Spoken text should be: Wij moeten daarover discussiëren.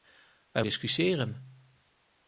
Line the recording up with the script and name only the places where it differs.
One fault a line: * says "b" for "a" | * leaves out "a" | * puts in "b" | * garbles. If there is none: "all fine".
* leaves out "moeten daarover"